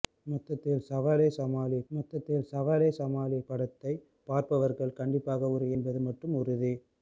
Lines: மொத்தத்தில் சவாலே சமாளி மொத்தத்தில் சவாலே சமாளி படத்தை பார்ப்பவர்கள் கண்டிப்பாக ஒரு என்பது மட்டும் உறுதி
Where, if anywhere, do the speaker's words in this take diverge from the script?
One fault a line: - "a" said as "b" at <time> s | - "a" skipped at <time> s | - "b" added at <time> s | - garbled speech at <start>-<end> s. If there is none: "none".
none